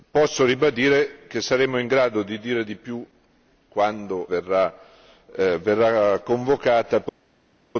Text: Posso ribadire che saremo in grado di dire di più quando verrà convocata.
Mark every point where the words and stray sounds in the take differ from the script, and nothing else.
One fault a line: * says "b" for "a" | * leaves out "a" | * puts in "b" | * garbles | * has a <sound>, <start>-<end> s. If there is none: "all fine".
all fine